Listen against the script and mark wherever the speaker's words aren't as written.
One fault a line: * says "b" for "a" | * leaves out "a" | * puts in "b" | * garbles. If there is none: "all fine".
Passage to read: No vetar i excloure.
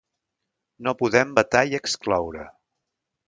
* puts in "podem"